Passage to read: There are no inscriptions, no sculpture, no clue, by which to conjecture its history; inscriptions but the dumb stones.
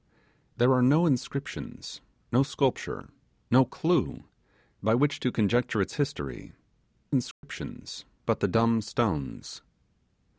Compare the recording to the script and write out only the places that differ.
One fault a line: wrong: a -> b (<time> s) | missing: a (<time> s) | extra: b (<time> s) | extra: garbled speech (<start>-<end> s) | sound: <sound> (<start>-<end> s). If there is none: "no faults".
sound: dropout (7.3-7.4 s)